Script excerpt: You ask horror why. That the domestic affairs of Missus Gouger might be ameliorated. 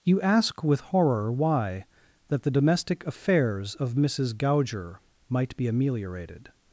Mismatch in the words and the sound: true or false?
true